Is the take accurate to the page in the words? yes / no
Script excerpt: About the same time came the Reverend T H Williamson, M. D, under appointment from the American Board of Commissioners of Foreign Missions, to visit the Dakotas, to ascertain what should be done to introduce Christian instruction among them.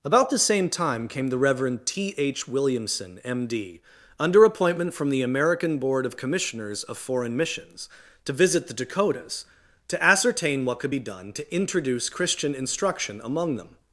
no